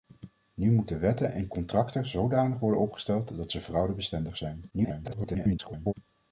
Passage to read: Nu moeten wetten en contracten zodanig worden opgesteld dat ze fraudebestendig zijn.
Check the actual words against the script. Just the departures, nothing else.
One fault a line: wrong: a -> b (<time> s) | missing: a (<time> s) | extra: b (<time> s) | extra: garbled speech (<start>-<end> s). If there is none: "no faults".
extra: garbled speech (4.7-5.9 s)